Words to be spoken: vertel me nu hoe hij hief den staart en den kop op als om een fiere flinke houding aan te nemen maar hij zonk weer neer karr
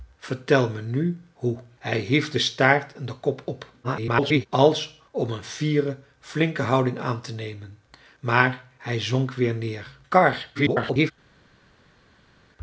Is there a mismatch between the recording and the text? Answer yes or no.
yes